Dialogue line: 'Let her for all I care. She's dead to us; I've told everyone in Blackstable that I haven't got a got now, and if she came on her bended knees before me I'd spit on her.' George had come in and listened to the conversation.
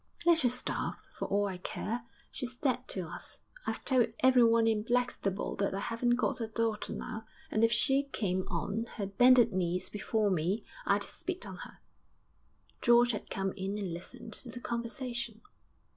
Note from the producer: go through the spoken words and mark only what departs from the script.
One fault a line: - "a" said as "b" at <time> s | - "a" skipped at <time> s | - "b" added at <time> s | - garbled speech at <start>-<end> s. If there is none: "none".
- "starve" added at 0.5 s
- "got" said as "daughter" at 6.5 s